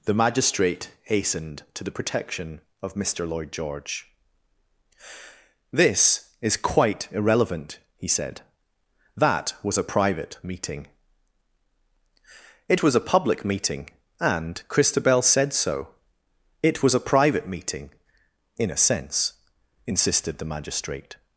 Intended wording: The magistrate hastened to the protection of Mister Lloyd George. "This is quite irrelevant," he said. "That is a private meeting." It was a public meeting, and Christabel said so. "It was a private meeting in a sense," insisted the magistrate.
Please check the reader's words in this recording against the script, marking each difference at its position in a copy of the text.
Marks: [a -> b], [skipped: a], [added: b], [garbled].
The magistrate hastened to the protection of Mister Lloyd George. "This is quite irrelevant," he said. "That [is -> was] a private meeting." It was a public meeting, and Christabel said so. "It was a private meeting in a sense," insisted the magistrate.